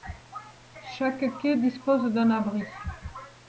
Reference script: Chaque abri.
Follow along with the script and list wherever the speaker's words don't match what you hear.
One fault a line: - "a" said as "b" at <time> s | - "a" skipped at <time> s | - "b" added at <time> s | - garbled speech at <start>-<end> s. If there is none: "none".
- "quai dispose d'un" added at 1.4 s